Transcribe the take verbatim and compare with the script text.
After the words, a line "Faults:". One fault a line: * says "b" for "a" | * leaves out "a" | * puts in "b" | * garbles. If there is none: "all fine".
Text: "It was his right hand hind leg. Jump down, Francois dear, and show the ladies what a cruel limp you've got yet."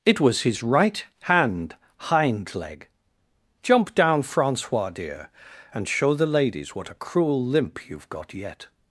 "It was his right hand hind leg. Jump down, Francois dear, and show the ladies what a cruel limp you've got yet."
Faults:
all fine